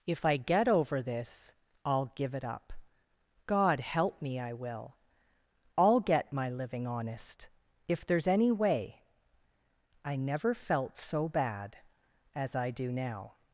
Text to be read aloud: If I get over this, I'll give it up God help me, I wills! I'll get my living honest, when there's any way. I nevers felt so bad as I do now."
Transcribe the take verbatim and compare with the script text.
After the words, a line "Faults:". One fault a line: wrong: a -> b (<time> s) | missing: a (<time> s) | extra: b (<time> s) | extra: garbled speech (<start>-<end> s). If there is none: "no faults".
If I get over this, I'll give it up God help me, I will! I'll get my living honest, if there's any way. I never felt so bad as I do now."
Faults:
wrong: wills -> will (4.5 s)
wrong: when -> if (7.9 s)
wrong: nevers -> never (10.2 s)